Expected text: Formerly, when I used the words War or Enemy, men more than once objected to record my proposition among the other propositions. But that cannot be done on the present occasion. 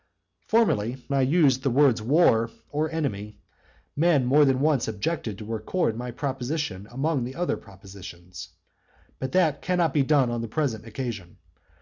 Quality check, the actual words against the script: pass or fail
fail